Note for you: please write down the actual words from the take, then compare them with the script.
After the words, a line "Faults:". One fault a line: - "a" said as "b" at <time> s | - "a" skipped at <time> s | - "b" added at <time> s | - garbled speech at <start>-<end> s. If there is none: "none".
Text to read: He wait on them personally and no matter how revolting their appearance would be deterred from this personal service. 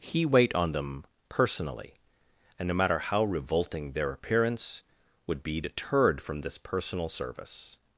He wait on them personally and no matter how revolting their appearance would be deterred from this personal service.
Faults:
none